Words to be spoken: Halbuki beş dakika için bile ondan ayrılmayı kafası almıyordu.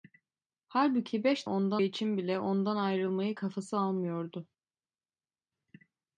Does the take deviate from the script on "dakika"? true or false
true